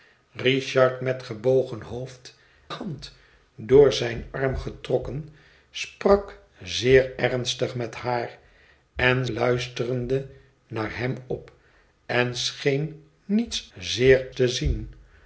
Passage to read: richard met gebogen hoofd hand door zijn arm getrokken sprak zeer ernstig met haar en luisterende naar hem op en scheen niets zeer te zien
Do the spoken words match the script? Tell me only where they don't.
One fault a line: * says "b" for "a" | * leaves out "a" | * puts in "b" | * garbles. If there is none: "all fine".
all fine